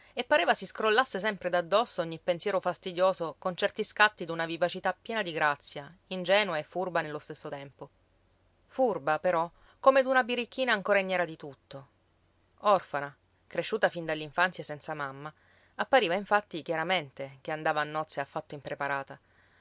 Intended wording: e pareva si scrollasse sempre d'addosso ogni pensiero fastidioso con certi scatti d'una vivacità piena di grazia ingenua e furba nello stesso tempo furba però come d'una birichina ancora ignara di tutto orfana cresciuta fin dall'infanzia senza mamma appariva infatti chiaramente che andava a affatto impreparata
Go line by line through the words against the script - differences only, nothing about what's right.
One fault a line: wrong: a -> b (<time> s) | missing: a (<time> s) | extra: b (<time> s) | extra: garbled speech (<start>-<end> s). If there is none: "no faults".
extra: nozze (17.8 s)